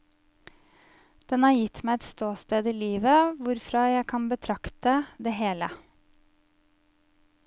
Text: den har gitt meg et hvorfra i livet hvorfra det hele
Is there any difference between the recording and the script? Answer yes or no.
yes